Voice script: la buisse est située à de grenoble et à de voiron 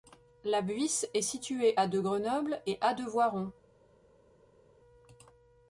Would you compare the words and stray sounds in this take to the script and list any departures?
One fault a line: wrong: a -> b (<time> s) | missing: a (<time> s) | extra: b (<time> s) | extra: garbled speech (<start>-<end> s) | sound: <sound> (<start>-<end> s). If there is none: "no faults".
no faults